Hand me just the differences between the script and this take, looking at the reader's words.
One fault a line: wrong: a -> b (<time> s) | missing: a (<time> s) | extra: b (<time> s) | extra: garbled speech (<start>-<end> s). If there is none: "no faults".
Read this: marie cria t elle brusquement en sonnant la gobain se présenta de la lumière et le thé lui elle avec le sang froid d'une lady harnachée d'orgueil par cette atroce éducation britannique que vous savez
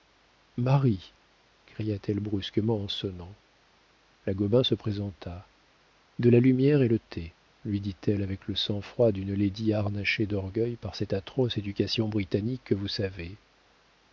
extra: dit (7.8 s)